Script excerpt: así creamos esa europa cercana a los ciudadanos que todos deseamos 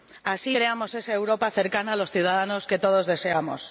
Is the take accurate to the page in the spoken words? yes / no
yes